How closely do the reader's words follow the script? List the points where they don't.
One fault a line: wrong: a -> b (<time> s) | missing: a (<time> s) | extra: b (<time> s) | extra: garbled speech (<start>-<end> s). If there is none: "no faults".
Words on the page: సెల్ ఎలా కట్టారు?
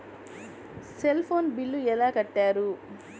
extra: ఫోన్ బిల్లు (1.2 s)